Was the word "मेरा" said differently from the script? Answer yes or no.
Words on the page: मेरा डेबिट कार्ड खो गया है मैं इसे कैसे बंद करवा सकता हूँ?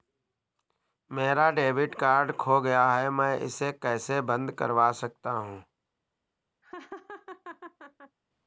no